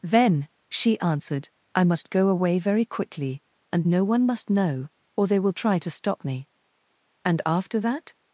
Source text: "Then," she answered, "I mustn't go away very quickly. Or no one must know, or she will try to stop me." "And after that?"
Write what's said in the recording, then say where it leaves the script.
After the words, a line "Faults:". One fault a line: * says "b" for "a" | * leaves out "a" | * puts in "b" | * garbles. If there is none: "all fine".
"Then," she answered, "I must go away very quickly. And no one must know, or they will try to stop me." "And after that?"
Faults:
* says "must" for "mustn't"
* says "And" for "Or"
* says "they" for "she"